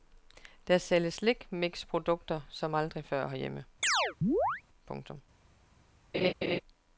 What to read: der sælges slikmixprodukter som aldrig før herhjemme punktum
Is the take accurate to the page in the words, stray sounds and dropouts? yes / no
no